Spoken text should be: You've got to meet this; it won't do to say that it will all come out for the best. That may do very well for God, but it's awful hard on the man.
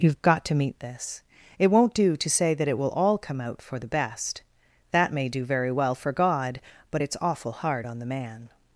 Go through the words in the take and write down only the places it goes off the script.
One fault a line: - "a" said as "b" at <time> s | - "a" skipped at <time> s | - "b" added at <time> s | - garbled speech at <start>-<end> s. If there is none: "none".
none